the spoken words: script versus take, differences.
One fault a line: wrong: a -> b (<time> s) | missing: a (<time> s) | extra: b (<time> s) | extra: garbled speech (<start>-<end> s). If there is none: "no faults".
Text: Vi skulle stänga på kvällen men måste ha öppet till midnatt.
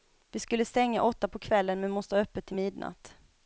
extra: åtta (1.0 s)